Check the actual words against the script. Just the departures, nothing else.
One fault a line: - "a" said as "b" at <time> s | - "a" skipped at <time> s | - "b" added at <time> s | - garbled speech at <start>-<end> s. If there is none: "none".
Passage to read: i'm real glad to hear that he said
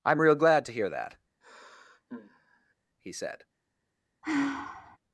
none